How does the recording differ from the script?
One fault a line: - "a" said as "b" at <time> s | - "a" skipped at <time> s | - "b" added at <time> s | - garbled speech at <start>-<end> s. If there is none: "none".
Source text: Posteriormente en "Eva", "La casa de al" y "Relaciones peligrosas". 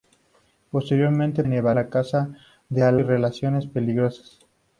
none